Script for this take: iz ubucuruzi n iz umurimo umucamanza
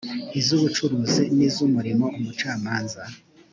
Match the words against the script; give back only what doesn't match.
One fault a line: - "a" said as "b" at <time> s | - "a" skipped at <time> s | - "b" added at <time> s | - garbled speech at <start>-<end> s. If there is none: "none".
none